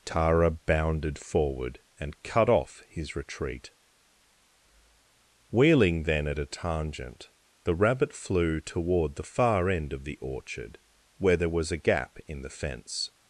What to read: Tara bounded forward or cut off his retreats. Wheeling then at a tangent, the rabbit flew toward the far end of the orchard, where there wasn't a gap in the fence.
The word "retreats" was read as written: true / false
false